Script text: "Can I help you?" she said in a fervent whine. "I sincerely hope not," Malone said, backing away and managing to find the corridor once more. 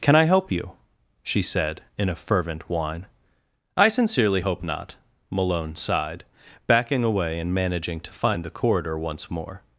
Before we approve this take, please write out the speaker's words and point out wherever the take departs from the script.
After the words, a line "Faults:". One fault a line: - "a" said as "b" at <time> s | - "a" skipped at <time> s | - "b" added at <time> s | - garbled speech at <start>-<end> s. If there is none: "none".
"Can I help you?" she said in a fervent whine. "I sincerely hope not," Malone sighed, backing away and managing to find the corridor once more.
Faults:
- "said" said as "sighed" at 5.8 s